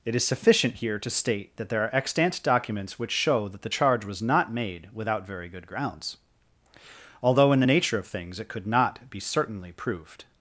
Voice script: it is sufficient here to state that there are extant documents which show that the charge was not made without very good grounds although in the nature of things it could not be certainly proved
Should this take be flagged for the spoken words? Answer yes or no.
no